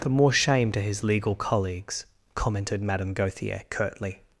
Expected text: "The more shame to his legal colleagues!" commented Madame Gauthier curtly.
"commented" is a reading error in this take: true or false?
false